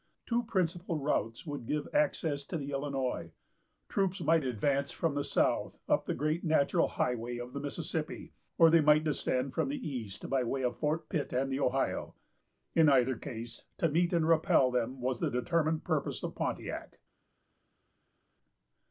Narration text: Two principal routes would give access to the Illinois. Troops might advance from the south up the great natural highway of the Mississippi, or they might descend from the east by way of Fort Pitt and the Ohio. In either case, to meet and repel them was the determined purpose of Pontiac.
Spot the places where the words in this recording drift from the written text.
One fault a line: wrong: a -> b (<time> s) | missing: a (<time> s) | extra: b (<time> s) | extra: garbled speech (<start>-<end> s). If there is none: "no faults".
no faults